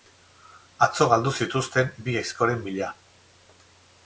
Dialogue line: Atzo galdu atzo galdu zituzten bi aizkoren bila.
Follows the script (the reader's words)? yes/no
no